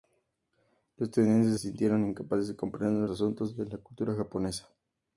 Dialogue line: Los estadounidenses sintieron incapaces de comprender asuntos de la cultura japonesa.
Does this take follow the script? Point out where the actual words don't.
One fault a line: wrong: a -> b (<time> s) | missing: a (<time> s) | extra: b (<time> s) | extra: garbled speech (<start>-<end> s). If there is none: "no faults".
no faults